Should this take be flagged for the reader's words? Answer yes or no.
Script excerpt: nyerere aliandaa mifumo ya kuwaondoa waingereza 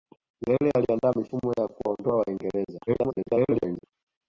yes